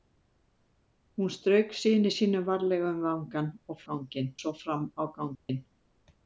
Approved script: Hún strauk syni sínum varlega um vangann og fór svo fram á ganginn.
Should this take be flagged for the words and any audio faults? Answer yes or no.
yes